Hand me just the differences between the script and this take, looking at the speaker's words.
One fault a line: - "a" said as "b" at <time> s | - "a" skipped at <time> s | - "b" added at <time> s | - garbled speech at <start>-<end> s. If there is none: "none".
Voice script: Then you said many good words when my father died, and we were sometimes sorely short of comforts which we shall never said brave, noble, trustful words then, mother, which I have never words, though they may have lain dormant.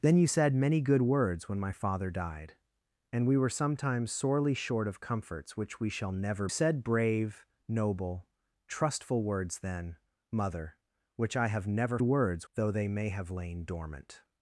none